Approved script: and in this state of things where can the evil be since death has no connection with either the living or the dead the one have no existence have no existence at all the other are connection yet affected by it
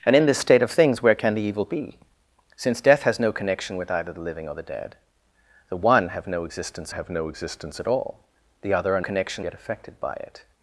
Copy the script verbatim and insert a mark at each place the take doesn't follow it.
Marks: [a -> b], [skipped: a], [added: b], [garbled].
and in this state of things where can the evil be since death has no connection with either the living or the dead the one have no existence have no existence at all the other are connection yet affected by it